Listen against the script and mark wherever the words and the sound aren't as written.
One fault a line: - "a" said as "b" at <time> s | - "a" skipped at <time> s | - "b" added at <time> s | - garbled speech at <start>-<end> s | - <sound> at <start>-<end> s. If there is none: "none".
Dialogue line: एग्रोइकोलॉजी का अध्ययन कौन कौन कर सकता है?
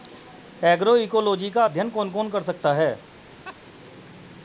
- laugh at 3.4-3.6 s